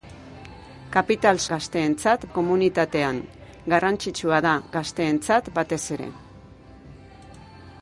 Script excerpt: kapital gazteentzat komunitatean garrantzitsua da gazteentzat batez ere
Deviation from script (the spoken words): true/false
false